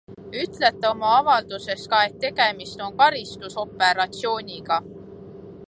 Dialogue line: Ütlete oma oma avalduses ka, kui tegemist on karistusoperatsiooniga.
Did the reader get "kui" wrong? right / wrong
wrong